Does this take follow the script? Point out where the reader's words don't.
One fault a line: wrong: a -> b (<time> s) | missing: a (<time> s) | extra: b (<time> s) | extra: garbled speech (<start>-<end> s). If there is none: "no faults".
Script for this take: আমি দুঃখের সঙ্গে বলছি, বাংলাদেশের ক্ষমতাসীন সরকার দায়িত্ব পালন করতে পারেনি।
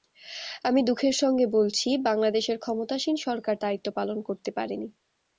no faults